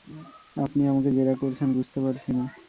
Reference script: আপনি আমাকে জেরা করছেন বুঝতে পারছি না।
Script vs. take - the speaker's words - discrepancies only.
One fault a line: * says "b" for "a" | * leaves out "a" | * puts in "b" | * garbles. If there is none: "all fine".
all fine